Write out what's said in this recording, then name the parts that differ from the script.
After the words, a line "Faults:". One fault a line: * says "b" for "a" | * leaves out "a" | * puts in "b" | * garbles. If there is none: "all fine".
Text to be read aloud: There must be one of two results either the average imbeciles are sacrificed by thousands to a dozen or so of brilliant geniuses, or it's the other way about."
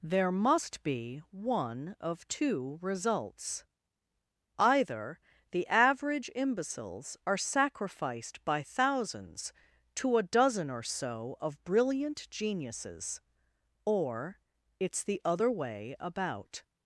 There must be one of two results either the average imbeciles are sacrificed by thousands to a dozen or so of brilliant geniuses, or it's the other way about."
Faults:
all fine